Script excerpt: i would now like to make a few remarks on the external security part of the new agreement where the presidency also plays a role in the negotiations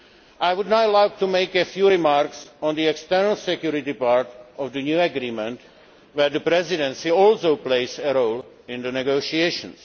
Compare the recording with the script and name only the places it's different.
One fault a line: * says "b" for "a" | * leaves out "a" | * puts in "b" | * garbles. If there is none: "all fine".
all fine